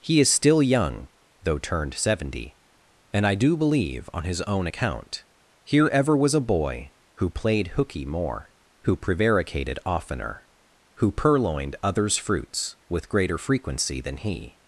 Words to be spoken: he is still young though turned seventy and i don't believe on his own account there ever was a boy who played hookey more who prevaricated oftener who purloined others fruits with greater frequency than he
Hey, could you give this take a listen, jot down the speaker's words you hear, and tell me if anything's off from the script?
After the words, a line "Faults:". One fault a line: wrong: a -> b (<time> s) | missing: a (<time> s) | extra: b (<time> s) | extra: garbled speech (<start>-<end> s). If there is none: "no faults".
he is still young though turned seventy and i do believe on his own account here ever was a boy who played hookey more who prevaricated oftener who purloined others fruits with greater frequency than he
Faults:
wrong: don't -> do (3.4 s)
wrong: there -> here (5.7 s)